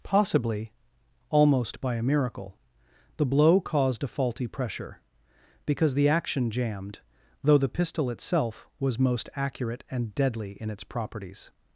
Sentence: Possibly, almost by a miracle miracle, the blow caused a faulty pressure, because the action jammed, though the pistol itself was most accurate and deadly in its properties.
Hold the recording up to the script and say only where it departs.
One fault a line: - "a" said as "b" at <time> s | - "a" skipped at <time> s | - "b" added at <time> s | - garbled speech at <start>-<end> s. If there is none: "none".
- "miracle" skipped at 2.6 s